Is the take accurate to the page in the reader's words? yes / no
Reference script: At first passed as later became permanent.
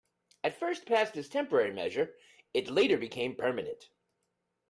no